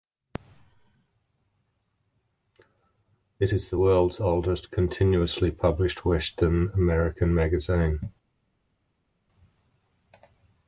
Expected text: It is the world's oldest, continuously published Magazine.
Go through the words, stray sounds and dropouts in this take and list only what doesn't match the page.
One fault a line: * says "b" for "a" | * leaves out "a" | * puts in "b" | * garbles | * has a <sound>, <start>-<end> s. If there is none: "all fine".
* puts in "Western American"